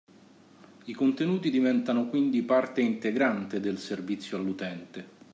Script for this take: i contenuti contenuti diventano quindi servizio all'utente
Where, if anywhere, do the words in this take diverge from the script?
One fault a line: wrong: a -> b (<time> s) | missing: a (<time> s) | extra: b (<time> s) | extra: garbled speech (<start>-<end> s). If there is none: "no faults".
missing: contenuti (1.5 s)
extra: parte integrante del (2.4 s)